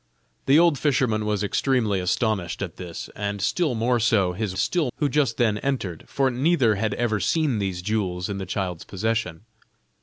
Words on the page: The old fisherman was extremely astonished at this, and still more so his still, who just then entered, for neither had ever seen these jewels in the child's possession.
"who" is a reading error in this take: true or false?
false